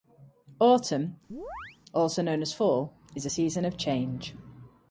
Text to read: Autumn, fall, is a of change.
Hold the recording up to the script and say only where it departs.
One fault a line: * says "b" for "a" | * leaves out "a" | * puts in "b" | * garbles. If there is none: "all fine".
* puts in "also known as"
* puts in "season"